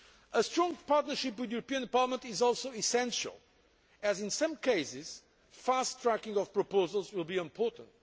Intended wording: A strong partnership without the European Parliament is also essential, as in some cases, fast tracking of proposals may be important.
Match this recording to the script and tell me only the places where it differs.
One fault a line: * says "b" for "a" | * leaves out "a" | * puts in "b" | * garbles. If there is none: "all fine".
* says "with" for "without"
* says "will" for "may"